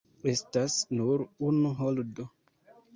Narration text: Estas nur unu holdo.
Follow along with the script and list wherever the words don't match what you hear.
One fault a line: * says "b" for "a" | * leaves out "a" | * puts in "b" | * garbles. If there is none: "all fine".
all fine